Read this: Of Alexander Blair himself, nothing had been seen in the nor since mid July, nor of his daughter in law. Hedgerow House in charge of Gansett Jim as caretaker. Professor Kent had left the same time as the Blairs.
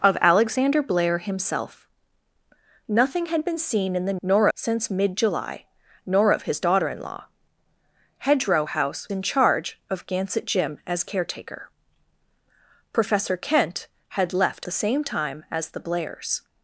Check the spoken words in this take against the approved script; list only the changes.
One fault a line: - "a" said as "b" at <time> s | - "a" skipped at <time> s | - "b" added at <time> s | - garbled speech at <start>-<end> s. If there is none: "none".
none